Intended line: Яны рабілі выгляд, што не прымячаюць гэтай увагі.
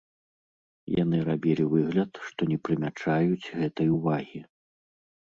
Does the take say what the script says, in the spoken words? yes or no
yes